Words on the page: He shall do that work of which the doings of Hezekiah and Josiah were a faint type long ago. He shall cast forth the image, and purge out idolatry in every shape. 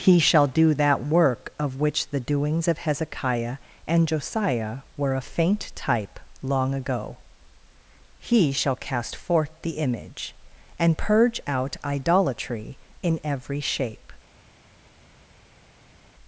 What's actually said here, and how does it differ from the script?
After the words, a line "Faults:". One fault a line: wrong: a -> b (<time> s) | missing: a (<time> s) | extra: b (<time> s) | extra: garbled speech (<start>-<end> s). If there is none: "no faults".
He shall do that work of which the doings of Hezekiah and Josiah were a faint type long ago. He shall cast forth the image, and purge out idolatry in every shape.
Faults:
no faults